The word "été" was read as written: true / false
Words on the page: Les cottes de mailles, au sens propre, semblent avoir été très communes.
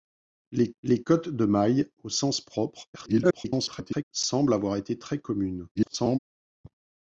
true